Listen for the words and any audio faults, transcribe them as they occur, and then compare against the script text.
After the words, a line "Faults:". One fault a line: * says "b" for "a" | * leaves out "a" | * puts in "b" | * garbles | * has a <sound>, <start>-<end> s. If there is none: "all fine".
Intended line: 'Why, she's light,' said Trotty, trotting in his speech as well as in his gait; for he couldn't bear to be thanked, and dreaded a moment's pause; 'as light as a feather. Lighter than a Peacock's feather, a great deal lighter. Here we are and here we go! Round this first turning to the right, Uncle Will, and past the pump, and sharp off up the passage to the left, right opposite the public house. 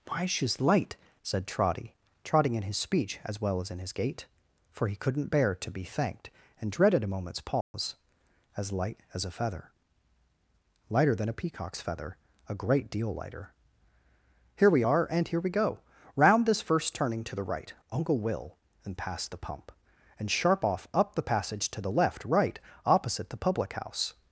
'Why, she's light,' said Trotty, trotting in his speech as well as in his gait; for he couldn't bear to be thanked, and dreaded a moment's pause; 'as light as a feather. Lighter than a Peacock's feather, a great deal lighter. Here we are and here we go! Round this first turning to the right, Uncle Will, and past the pump, and sharp off up the passage to the left, right opposite the public house.
Faults:
* has a dropout, 7.6-7.7 s